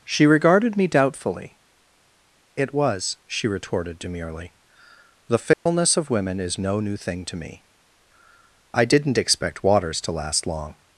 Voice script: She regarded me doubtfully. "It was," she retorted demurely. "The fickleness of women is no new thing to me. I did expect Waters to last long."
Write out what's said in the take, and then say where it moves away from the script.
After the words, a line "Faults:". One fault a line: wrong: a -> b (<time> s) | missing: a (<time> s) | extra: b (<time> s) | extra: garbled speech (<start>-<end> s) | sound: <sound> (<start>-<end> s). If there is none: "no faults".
She regarded me doubtfully. "It was," she retorted demurely. "The fickleness of women is no new thing to me. I didn't expect Waters to last long."
Faults:
sound: dropout (5.5-5.7 s)
wrong: did -> didn't (8.8 s)